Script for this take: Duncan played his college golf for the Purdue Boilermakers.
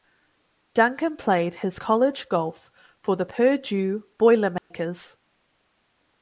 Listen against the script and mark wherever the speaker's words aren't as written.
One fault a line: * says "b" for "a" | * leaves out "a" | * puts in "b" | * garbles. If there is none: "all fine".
all fine